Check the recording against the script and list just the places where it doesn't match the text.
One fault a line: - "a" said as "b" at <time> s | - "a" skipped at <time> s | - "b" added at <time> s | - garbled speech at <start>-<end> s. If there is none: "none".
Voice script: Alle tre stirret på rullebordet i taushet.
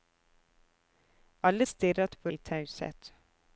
- "tre" skipped at 1.6 s
- "rullebordet" skipped at 2.3 s